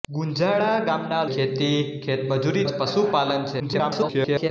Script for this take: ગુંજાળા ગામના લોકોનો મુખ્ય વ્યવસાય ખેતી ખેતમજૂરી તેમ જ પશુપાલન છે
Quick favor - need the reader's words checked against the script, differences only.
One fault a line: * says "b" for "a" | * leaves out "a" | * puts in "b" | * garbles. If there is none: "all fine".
* leaves out "લોકોનો મુખ્ય વ્યવસાય"
* leaves out "તેમ"
* garbles